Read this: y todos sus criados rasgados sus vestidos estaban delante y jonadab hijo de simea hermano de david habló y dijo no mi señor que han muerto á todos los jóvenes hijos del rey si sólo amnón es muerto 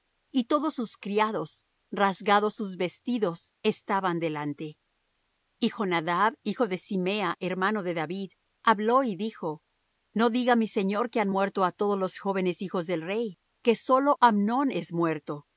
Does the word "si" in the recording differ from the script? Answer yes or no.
yes